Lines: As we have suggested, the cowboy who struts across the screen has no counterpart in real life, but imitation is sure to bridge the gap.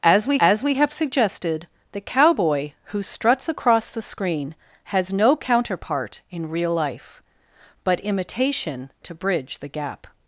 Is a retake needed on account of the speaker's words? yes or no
yes